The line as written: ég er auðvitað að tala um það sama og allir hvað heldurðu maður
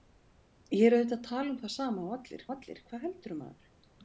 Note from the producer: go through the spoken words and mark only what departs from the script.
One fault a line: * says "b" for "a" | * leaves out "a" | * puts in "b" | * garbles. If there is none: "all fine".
* puts in "og allir"